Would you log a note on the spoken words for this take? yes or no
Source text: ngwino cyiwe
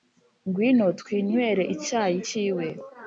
yes